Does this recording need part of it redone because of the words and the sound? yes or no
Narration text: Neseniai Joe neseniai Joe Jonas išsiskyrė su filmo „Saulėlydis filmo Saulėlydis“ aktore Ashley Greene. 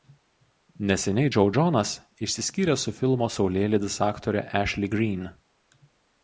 yes